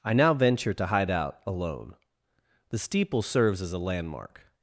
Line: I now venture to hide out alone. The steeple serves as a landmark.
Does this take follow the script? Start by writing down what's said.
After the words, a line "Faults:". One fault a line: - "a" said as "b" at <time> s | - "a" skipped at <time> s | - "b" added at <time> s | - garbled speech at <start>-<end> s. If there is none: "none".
I now venture to hide out alone. The steeple serves as a landmark.
Faults:
none